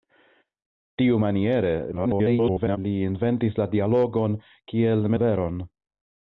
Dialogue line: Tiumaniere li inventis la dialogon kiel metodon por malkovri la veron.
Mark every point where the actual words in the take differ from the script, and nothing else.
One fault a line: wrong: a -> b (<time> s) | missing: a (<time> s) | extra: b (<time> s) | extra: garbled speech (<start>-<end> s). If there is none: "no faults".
extra: garbled speech (1.9-2.8 s)
missing: metodon por malkovri (5.1 s)